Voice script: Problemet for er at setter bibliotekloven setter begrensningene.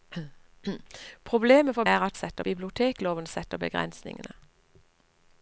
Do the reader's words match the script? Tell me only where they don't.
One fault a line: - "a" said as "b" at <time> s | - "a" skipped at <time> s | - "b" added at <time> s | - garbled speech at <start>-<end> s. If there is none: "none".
none